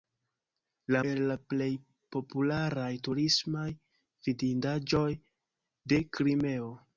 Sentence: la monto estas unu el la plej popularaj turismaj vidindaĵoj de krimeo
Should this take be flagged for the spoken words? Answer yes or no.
yes